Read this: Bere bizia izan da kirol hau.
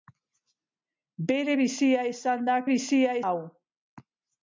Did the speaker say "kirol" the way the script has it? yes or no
no